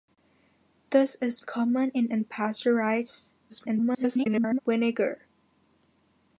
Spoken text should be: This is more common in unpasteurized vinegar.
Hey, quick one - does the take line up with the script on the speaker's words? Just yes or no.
no